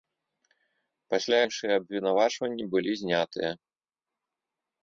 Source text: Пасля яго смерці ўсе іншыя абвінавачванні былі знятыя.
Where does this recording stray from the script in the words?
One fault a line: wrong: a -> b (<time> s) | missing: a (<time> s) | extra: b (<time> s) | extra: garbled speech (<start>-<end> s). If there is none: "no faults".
missing: яго смерці ўсе (1.4 s)